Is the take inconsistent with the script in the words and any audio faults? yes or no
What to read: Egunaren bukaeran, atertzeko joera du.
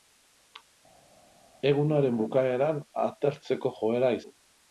no